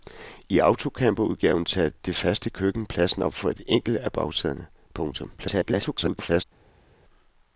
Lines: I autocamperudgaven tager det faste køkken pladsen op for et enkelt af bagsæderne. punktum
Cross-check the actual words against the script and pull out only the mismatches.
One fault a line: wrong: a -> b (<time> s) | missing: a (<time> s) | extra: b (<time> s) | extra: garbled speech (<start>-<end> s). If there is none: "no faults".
extra: garbled speech (5.4-6.4 s)